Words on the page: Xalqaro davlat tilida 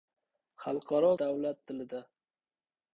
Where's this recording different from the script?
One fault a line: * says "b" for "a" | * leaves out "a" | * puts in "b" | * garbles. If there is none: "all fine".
all fine